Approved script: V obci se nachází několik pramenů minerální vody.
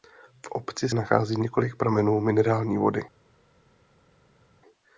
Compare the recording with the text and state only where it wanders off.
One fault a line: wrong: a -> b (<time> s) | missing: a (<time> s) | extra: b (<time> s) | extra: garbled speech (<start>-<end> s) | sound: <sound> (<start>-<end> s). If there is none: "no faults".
missing: se (0.9 s)